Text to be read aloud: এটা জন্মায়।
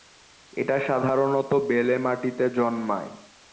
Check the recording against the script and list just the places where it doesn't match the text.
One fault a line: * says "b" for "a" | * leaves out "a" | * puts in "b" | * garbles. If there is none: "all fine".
* puts in "সাধারণত বেলে মাটিতে"